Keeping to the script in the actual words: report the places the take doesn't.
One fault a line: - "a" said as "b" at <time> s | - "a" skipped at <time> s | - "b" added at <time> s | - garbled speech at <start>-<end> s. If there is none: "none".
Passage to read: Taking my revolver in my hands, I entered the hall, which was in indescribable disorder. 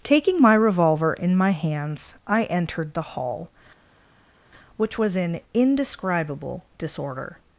none